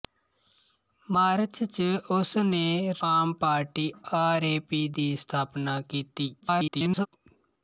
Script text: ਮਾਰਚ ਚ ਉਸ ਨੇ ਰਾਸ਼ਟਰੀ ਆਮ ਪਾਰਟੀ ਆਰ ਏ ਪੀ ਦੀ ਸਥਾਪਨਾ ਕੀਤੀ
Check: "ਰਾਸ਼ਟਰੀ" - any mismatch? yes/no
yes